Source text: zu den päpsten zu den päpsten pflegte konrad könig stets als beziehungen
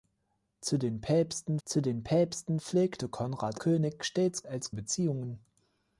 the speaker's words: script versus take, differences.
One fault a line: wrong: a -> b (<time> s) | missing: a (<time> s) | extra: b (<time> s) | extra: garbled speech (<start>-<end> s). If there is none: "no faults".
no faults